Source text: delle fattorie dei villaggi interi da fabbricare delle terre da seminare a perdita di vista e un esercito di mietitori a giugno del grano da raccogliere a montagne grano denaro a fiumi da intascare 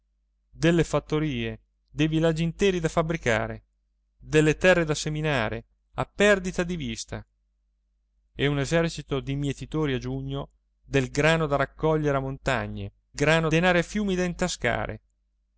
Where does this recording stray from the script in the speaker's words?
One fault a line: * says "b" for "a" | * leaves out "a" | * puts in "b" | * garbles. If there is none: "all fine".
all fine